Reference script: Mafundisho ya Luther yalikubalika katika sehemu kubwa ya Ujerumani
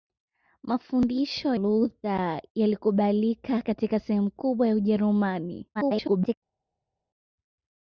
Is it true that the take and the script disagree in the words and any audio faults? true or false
true